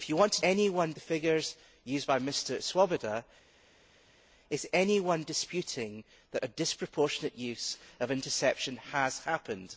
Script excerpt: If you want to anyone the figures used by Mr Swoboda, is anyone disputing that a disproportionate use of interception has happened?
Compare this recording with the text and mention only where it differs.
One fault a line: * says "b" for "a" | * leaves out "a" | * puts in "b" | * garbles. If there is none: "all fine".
all fine